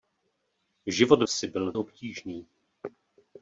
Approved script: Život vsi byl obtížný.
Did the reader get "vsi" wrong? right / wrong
right